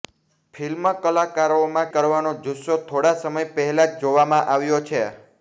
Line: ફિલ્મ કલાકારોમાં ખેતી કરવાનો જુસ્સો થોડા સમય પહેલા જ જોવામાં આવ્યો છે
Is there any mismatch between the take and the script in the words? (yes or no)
yes